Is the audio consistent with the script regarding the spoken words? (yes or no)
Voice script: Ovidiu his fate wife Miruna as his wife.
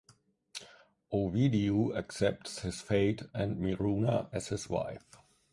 no